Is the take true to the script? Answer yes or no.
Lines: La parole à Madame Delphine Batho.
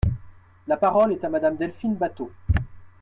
no